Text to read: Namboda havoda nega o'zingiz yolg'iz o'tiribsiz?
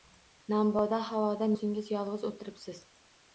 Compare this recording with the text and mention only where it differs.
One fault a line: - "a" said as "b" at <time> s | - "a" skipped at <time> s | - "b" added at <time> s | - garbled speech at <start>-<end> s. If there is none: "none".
- "nega" skipped at 1.5 s